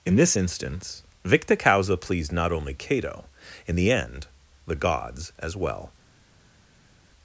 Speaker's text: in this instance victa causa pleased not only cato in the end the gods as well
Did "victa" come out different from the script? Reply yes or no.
no